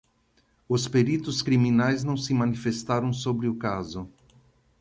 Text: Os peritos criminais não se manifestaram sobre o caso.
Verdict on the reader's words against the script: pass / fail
pass